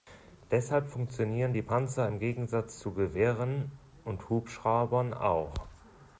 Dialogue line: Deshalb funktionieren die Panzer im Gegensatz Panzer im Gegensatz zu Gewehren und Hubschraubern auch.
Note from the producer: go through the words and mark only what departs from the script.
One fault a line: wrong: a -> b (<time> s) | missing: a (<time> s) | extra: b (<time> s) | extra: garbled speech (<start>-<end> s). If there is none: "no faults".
missing: Panzer im Gegensatz (2.8 s)